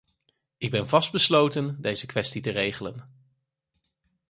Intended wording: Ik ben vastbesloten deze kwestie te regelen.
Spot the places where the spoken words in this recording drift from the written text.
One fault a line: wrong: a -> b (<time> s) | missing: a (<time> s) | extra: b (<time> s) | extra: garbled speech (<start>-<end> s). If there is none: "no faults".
no faults